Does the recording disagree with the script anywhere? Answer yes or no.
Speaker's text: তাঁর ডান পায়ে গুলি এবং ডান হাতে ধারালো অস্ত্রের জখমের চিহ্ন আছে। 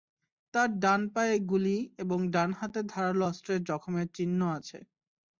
no